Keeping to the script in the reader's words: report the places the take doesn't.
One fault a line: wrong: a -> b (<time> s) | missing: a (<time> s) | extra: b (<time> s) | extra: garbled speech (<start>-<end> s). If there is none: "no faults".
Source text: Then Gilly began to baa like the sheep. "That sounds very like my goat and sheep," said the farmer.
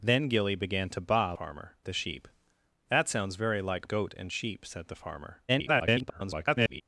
wrong: like -> farmer (1.3 s)
missing: my (3.9 s)
extra: garbled speech (5.5-6.8 s)